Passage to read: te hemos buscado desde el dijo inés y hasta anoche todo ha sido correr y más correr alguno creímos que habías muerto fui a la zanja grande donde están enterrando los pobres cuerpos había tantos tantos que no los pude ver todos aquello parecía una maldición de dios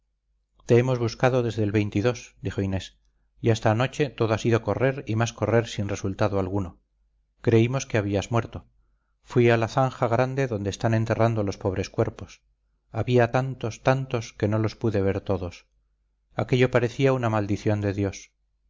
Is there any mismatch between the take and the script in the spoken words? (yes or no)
yes